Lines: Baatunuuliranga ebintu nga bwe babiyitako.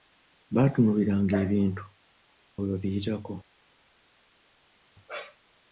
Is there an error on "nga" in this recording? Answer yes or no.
yes